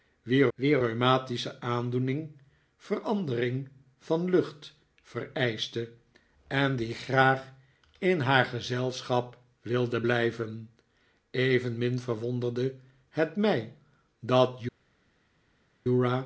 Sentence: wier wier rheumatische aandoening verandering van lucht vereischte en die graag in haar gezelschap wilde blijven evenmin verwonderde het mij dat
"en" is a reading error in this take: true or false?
false